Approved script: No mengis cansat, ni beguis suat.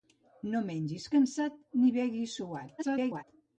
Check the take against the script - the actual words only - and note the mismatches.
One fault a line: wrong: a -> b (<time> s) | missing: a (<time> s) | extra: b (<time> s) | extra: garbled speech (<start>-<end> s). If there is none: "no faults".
extra: garbled speech (2.8-3.2 s)